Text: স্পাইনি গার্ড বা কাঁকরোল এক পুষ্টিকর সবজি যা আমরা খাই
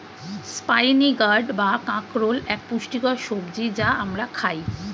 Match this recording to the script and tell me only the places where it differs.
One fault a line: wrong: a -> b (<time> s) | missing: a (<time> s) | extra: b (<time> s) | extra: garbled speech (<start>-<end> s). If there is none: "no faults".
no faults